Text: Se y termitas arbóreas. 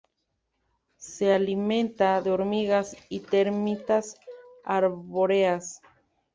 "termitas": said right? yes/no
yes